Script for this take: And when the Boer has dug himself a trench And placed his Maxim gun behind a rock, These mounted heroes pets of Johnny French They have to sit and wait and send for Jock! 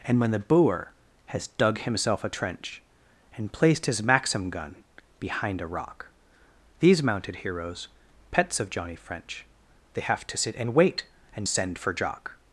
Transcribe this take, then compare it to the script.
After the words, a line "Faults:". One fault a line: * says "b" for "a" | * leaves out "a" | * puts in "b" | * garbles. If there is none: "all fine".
And when the Boer has dug himself a trench And placed his Maxim gun behind a rock, These mounted heroes pets of Johnny French They have to sit and wait and send for Jock!
Faults:
all fine